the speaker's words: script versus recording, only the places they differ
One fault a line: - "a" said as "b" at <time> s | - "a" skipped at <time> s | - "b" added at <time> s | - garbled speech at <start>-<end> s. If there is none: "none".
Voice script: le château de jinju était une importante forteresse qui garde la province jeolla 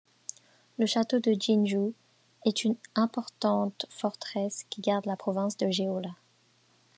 - "était" said as "est" at 2.5 s
- "de" added at 5.6 s